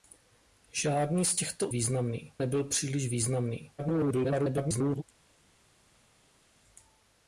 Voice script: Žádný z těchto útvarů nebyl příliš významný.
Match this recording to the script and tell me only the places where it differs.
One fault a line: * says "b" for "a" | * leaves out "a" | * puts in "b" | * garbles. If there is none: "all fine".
* says "významný" for "útvarů"
* garbles